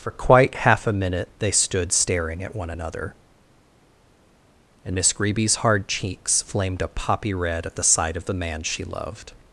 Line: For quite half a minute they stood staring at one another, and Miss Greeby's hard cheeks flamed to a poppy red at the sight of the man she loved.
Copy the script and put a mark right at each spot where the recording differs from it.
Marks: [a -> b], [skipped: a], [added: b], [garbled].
For quite half a minute they stood staring at one another, and Miss Greeby's hard cheeks flamed [skipped: to] a poppy red at the sight of the man she loved.